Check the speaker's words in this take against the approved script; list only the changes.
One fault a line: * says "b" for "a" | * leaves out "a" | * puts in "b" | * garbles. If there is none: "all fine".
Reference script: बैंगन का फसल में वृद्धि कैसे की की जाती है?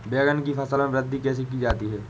* says "की" for "का"
* leaves out "की"